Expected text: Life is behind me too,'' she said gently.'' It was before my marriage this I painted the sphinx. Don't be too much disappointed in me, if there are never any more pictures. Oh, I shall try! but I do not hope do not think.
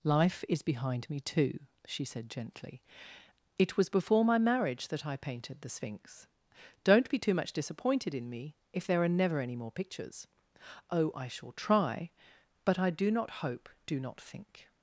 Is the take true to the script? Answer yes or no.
no